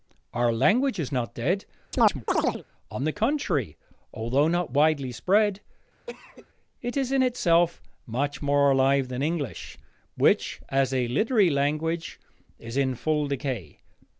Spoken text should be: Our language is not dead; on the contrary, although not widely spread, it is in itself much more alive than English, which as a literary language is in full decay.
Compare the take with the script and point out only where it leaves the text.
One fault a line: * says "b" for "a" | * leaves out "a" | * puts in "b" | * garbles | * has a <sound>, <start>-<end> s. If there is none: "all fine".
* has a chirp, 1.9-2.6 s
* has a cough, 6.1-6.5 s